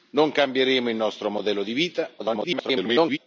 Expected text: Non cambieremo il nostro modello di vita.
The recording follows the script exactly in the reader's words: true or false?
false